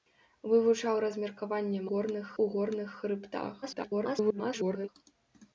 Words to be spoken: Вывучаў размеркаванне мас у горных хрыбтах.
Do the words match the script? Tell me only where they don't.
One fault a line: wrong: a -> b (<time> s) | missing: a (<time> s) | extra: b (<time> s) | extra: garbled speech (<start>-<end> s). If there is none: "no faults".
wrong: мас -> горных (1.9 s)
extra: garbled speech (3.6-4.9 s)